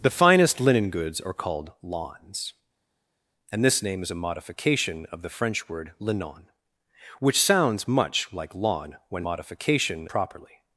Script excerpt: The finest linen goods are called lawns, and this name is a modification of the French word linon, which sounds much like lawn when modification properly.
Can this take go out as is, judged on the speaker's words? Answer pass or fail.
pass